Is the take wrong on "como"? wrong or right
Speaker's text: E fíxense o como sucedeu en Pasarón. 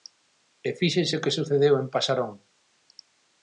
wrong